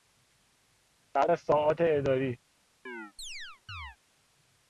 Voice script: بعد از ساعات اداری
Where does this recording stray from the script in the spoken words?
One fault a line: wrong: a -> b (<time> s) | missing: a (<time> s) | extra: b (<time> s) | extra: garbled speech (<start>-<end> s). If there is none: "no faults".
no faults